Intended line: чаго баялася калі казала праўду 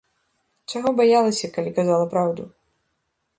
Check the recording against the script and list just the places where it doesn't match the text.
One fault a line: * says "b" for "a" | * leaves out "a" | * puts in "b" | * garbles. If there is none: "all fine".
all fine